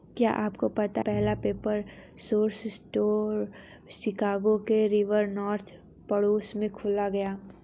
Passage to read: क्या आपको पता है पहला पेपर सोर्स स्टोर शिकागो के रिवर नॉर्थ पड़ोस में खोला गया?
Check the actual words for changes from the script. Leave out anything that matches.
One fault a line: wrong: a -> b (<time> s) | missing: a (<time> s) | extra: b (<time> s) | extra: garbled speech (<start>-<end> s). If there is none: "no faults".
missing: है (1.0 s)